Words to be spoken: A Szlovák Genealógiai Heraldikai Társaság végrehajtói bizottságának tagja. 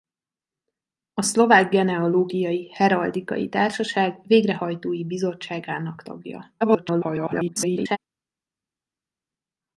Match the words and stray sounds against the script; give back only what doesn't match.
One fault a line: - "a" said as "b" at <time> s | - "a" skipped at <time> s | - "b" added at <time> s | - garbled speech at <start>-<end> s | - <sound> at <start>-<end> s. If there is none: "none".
- garbled speech at 6.6-8.0 s